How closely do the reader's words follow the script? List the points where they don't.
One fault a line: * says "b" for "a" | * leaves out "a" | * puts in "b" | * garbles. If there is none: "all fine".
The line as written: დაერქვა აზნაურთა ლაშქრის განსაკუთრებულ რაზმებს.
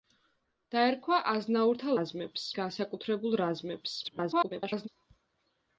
* says "რაზმებს" for "ლაშქრის"
* garbles